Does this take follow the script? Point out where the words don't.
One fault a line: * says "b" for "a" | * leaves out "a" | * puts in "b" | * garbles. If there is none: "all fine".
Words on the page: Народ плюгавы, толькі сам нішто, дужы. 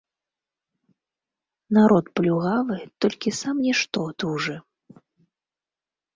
all fine